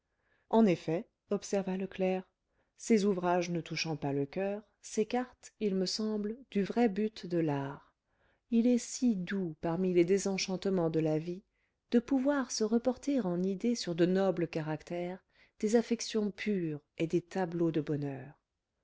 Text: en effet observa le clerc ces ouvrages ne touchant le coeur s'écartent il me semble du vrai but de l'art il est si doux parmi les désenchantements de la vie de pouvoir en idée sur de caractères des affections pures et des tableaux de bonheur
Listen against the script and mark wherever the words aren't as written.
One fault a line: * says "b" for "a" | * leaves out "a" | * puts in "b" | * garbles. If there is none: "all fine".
* puts in "pas"
* puts in "se reporter"
* puts in "nobles"